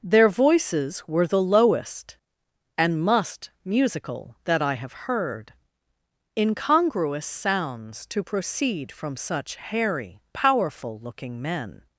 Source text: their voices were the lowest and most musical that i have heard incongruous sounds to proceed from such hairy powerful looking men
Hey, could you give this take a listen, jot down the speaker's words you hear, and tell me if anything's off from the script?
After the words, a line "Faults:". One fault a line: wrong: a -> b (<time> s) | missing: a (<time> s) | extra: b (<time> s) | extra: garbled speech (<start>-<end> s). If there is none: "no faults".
their voices were the lowest and must musical that i have heard incongruous sounds to proceed from such hairy powerful looking men
Faults:
wrong: most -> must (3.0 s)